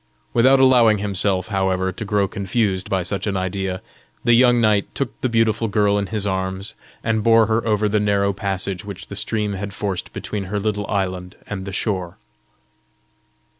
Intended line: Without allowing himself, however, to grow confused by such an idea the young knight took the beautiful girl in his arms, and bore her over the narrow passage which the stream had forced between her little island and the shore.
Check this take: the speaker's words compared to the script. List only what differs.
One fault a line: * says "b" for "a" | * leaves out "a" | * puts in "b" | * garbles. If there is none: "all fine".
all fine